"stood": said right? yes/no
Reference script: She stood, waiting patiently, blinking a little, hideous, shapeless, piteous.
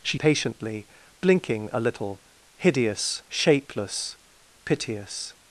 no